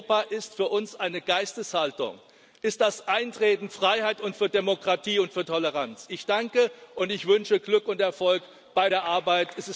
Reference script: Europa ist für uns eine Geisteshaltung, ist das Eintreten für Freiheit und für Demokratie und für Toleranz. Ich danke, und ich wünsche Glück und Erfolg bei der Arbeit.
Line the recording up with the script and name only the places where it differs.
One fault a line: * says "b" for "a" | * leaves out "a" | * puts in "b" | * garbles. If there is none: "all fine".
* leaves out "für"